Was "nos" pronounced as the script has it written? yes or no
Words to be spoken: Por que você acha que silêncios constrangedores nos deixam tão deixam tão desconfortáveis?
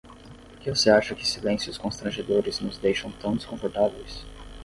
yes